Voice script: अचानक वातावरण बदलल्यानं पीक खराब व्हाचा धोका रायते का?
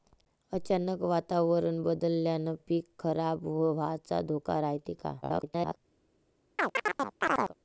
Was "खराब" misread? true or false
false